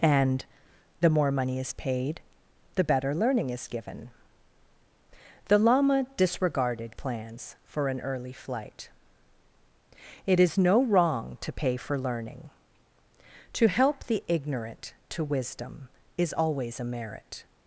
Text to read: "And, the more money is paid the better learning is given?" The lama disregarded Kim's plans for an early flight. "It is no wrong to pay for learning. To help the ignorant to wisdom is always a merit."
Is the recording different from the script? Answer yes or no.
yes